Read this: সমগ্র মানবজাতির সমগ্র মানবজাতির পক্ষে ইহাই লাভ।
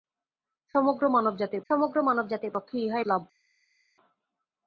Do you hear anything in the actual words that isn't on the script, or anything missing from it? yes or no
no